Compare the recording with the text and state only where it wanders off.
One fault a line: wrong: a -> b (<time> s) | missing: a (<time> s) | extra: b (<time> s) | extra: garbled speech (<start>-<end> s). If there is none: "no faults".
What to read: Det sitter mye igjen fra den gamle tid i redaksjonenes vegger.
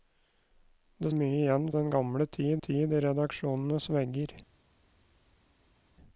missing: sitter (1.1 s)
missing: fra (1.7 s)
extra: tid (2.6 s)